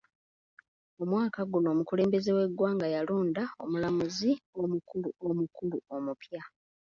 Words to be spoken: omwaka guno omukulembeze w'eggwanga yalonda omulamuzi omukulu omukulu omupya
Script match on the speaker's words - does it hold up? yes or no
yes